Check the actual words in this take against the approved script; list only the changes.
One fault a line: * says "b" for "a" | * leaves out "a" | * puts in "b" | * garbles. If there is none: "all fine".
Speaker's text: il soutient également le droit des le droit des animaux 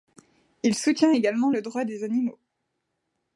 * leaves out "le droit des"